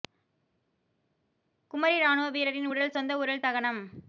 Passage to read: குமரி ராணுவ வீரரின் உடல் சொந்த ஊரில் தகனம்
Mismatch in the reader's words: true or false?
false